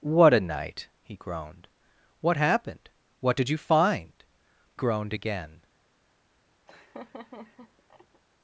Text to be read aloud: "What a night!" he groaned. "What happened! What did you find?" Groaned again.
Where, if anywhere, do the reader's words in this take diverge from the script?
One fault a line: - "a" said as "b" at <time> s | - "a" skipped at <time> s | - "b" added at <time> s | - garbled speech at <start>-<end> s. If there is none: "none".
none